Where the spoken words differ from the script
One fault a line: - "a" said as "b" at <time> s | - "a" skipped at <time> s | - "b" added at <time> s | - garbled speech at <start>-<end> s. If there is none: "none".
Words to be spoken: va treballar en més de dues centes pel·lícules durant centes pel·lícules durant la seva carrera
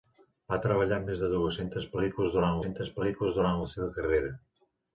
none